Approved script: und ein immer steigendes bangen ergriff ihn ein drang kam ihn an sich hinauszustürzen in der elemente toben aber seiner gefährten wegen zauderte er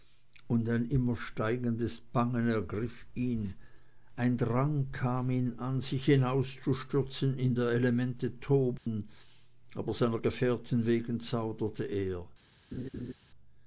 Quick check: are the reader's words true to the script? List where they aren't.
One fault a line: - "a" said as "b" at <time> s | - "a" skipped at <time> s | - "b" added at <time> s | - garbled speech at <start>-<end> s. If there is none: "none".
none